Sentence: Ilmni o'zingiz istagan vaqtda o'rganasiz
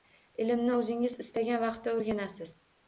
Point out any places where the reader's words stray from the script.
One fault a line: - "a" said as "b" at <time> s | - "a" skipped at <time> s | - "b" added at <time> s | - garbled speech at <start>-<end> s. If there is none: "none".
none